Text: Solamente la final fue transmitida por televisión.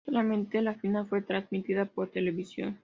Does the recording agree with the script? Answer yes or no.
yes